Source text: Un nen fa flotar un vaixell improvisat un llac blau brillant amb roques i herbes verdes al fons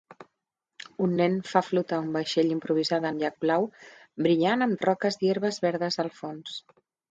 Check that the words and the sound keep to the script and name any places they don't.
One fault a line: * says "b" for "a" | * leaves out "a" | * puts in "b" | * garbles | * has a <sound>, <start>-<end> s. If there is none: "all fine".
* has a dropout, 4.8-4.8 s